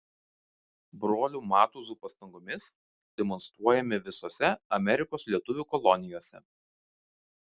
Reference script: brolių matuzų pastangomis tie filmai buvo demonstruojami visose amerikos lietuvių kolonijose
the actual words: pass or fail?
fail